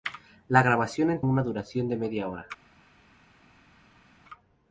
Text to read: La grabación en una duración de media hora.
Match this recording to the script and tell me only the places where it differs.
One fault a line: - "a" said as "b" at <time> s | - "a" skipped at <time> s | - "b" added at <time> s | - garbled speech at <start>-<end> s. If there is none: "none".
none